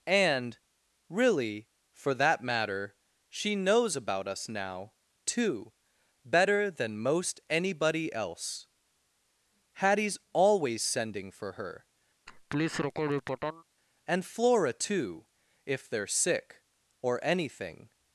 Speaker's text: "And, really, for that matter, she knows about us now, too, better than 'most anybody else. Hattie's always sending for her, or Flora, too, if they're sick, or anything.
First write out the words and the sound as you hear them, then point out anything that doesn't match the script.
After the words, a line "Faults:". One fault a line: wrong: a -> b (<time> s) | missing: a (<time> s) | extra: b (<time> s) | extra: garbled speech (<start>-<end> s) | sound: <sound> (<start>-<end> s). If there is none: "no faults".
"And, really, for that matter, she knows about us now, too, better than 'most anybody else. Hattie's always sending for her, and Flora, too, if they're sick, or anything.
Faults:
sound: laugh (12.3-13.6 s)
wrong: or -> and (14.1 s)